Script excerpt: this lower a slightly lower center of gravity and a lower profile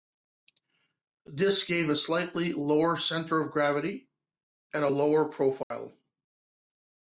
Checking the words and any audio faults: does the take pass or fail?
fail